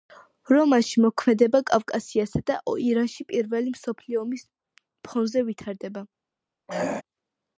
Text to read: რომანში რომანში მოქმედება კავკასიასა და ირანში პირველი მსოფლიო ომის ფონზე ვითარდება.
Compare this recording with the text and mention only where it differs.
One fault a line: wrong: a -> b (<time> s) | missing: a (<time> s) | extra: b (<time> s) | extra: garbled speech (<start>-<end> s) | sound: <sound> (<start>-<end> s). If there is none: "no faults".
missing: რომანში (1.0 s)
sound: throat clearing (6.7-7.0 s)